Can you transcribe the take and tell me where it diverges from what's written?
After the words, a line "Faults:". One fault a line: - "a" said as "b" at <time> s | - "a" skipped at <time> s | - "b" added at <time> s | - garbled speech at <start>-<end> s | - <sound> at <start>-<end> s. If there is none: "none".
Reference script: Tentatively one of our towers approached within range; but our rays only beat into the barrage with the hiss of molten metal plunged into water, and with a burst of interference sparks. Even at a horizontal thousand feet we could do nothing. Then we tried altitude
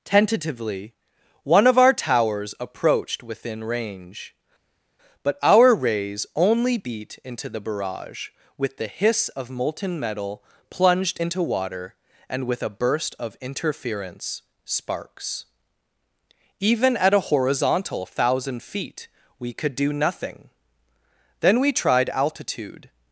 Tentatively one of our towers approached within range; but our rays only beat into the barrage with the hiss of molten metal plunged into water, and with a burst of interference sparks. Even at a horizontal thousand feet we could do nothing. Then we tried altitude
Faults:
none